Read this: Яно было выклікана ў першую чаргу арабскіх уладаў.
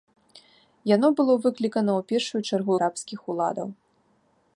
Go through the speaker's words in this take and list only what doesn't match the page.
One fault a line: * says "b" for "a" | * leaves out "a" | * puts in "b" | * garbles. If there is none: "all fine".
all fine